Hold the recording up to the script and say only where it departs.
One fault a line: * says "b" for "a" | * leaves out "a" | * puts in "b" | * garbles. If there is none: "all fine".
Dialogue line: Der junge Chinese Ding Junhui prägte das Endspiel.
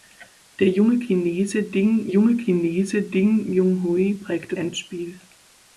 * puts in "junge Chinese Ding"
* leaves out "das"